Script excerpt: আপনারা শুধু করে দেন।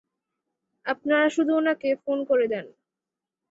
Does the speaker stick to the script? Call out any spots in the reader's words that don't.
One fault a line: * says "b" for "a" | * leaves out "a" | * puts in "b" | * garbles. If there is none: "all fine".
* puts in "উনাকে ফোন"